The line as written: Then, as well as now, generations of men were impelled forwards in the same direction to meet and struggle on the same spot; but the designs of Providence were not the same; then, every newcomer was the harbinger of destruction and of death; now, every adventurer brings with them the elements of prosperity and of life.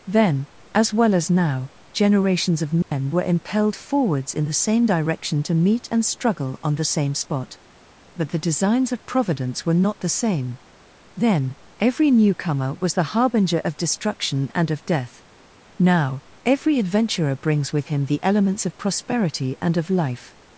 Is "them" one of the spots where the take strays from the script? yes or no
yes